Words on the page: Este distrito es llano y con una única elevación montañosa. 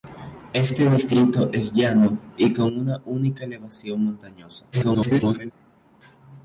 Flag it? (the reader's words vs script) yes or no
yes